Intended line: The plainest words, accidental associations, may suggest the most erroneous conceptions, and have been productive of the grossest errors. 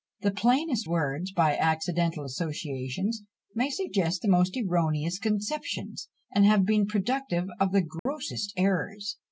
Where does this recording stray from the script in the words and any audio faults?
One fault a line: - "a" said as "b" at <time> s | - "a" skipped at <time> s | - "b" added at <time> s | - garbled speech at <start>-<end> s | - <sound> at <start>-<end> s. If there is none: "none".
- "by" added at 1.3 s
- dropout at 8.0-8.1 s